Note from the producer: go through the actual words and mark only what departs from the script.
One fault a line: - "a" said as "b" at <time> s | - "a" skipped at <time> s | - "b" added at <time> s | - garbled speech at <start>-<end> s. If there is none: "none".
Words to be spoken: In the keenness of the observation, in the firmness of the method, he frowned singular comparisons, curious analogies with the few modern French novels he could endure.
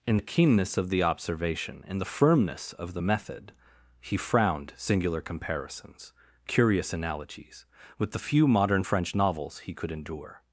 none